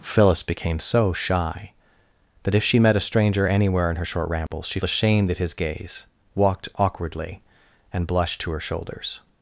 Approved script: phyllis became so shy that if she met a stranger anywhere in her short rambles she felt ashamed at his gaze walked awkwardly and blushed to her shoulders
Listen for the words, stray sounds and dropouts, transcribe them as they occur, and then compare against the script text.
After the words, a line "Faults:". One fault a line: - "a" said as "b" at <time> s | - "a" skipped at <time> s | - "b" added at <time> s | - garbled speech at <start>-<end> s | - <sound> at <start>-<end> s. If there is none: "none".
phyllis became so shy that if she met a stranger anywhere in her short rambles she ashamed at his gaze walked awkwardly and blushed to her shoulders
Faults:
- dropout at 4.5-4.5 s
- "felt" skipped at 4.8 s